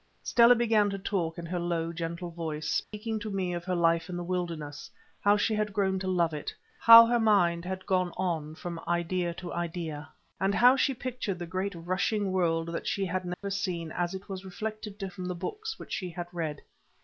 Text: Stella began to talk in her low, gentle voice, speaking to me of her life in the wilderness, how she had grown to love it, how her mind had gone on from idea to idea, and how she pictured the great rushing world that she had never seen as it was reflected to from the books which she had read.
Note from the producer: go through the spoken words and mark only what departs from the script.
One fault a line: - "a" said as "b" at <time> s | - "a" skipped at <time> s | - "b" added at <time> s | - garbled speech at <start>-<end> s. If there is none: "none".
none